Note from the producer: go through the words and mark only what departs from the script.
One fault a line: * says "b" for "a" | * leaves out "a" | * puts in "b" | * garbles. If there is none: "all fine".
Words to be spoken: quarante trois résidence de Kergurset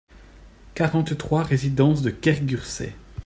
all fine